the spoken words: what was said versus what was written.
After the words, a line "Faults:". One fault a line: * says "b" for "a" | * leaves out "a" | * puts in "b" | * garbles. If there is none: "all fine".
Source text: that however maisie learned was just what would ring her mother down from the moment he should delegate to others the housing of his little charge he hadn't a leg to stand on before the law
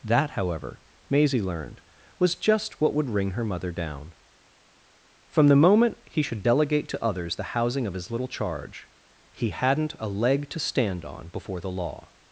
that however maisie learned was just what would ring her mother down from the moment he should delegate to others the housing of his little charge he hadn't a leg to stand on before the law
Faults:
all fine